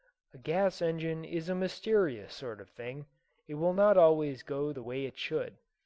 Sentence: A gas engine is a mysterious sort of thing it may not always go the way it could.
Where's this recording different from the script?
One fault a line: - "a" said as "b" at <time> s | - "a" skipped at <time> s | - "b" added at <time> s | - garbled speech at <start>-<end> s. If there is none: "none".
- "may" said as "will" at 3.5 s
- "could" said as "should" at 5.2 s